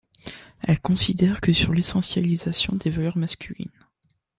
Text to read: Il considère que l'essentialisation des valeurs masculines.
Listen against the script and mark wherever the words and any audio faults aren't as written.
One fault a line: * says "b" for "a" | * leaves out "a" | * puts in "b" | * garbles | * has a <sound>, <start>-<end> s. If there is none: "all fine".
* says "Elle" for "Il"
* puts in "sur"